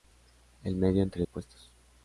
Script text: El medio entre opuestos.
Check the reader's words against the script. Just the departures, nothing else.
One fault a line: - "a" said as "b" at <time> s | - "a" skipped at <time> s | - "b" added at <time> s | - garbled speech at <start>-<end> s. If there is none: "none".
none